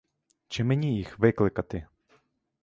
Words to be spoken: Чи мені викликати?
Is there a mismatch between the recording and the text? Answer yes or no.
yes